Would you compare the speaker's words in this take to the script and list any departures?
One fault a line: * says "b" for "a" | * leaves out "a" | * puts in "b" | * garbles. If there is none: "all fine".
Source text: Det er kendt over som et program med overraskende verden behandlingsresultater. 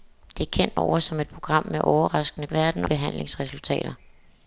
all fine